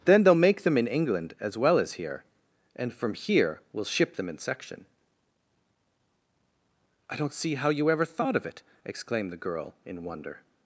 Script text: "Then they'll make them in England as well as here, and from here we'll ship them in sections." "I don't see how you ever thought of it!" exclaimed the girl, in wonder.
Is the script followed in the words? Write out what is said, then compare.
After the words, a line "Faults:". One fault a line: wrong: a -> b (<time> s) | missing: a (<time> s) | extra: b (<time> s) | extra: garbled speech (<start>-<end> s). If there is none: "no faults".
"Then they'll make them in England as well as here, and from here we'll ship them in section." "I don't see how you ever thought of it!" exclaimed the girl, in wonder.
Faults:
wrong: sections -> section (4.4 s)